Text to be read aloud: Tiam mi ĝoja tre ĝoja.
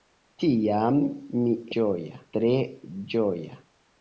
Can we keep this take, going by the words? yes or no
yes